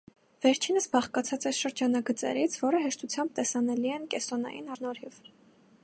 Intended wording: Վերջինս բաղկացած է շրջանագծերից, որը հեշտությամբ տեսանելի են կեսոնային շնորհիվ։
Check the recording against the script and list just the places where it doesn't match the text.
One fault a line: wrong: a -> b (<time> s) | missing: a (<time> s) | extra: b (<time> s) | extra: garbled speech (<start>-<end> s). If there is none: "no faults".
no faults